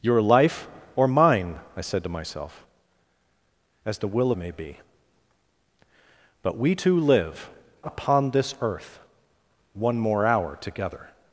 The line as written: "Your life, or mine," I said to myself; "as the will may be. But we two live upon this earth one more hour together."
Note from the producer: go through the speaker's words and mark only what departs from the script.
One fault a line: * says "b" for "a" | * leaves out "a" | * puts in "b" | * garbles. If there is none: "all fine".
all fine